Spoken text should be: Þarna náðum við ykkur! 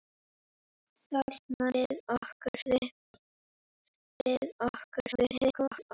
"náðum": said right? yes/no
no